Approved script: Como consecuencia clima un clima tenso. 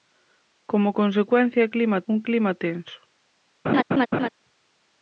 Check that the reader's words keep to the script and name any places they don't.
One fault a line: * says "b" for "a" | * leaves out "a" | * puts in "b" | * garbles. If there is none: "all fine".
all fine